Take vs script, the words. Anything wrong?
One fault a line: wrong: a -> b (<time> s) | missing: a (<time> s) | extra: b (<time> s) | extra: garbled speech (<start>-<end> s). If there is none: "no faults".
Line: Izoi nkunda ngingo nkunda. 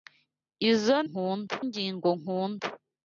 no faults